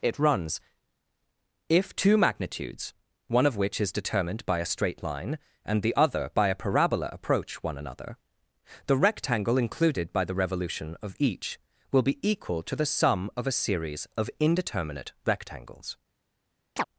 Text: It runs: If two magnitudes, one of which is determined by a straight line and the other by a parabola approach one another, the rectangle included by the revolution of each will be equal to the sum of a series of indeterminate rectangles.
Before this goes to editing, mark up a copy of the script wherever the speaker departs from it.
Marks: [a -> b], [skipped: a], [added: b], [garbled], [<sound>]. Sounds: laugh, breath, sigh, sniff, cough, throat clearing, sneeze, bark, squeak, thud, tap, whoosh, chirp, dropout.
It runs: If two magnitudes, one of which is determined by a straight line and the other by a parabola approach one another, the rectangle included by the revolution of each will be equal to the sum of a series of indeterminate rectangles. [chirp]